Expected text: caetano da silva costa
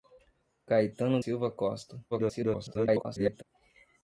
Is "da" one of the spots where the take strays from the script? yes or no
yes